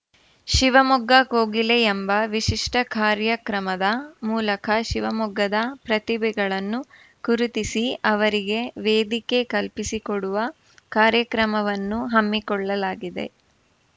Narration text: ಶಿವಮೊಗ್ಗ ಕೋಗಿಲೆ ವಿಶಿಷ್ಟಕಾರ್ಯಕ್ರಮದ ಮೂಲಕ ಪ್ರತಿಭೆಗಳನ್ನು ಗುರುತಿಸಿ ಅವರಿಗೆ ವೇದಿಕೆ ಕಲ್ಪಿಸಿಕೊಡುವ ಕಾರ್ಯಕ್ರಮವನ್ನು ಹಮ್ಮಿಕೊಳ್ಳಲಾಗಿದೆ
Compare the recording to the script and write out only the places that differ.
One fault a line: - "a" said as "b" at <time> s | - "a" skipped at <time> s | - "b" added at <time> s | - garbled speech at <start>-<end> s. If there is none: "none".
- "ಎಂಬ" added at 1.9 s
- "ಶಿವಮೊಗ್ಗದ" added at 4.8 s